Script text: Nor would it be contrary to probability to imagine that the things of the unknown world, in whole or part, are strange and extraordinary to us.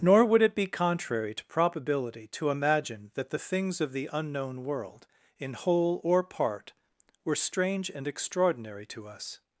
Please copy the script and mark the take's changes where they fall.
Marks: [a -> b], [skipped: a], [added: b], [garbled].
Nor would it be contrary to probability to imagine that the things of the unknown world, in whole or part, [are -> were] strange and extraordinary to us.